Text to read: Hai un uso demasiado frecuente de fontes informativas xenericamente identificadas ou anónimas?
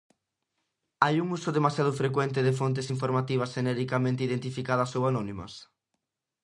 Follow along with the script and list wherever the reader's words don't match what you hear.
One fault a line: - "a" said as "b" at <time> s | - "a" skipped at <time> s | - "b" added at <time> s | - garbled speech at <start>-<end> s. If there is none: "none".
none